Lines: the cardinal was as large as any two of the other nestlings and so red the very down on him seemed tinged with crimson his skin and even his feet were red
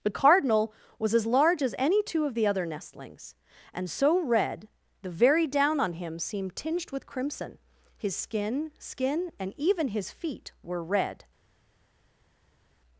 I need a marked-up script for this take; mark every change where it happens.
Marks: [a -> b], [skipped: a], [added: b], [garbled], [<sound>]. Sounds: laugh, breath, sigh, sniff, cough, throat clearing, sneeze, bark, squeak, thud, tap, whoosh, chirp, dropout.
the cardinal was as large as any two of the other nestlings and so red the very down on him seemed tinged with crimson his skin [added: skin] and even his feet were red